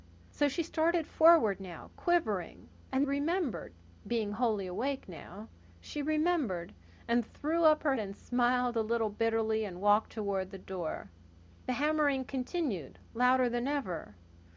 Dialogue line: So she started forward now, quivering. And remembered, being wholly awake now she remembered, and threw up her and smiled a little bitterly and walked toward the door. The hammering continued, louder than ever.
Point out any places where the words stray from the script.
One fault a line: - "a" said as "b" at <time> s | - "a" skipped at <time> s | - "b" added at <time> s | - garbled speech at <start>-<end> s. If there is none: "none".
none